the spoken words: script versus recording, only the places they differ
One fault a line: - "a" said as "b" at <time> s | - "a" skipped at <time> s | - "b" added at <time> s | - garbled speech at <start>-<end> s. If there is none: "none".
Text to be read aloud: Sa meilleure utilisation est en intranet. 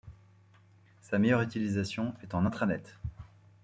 none